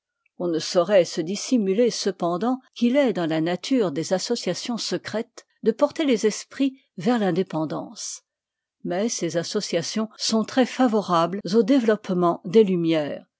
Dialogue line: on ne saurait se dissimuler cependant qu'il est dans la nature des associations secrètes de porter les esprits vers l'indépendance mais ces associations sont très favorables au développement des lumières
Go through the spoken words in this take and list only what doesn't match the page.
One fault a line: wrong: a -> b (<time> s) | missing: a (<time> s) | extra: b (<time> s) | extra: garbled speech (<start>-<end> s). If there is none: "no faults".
no faults